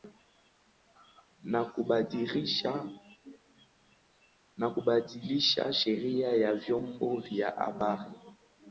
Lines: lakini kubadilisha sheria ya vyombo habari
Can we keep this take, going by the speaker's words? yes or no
no